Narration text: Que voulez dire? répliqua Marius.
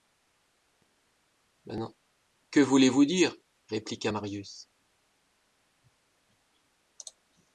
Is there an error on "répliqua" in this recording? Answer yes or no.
no